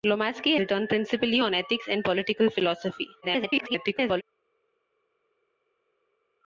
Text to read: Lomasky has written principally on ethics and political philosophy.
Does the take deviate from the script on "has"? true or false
true